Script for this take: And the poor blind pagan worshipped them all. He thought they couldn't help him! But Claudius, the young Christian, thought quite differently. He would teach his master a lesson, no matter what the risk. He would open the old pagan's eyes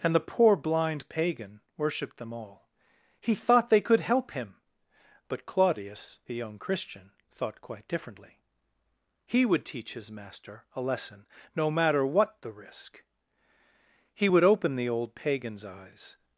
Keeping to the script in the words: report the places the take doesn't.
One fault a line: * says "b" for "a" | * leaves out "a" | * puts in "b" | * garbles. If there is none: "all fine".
* says "could" for "couldn't"